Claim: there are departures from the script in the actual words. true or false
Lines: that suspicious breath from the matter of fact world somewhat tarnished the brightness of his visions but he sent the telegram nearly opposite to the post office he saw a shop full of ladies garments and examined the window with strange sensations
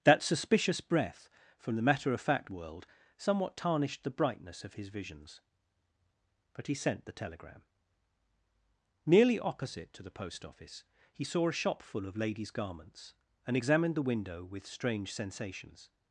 false